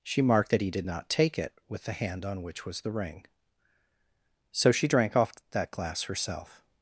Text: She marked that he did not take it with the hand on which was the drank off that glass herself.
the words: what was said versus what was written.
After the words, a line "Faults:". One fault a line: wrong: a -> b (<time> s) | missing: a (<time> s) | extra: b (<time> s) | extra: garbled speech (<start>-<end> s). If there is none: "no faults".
She marked that he did not take it with the hand on which was the ring, so she drank off that glass herself.
Faults:
extra: ring so she (2.9 s)